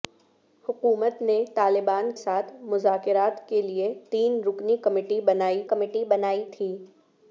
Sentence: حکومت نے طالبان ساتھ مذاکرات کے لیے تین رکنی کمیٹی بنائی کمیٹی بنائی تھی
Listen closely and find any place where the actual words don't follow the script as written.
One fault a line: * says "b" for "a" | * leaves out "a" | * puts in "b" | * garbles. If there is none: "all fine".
all fine